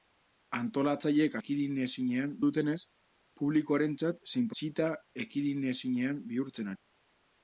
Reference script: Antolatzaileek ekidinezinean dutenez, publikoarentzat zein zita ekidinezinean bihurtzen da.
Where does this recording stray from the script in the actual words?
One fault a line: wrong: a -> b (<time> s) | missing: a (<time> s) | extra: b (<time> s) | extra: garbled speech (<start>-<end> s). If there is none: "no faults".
no faults